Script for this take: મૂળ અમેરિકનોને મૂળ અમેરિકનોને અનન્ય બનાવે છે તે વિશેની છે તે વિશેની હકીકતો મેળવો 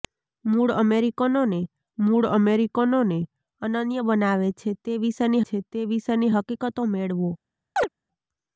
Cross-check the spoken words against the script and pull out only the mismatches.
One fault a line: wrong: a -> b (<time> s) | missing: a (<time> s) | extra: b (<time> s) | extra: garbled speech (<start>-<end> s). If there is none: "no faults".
no faults